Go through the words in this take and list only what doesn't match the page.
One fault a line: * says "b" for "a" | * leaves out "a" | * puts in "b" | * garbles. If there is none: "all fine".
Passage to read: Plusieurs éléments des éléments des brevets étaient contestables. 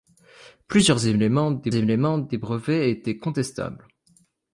all fine